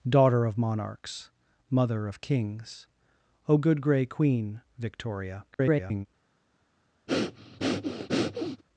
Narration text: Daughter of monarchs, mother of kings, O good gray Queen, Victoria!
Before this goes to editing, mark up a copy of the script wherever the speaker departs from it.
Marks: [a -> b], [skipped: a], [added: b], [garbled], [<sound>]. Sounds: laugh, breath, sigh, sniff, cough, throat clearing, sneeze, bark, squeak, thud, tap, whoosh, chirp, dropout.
Daughter of monarchs, mother of kings, O good gray Queen, Victoria! [garbled] [breath]